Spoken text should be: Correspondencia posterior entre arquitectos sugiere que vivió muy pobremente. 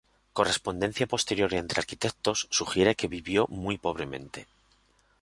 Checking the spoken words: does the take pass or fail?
pass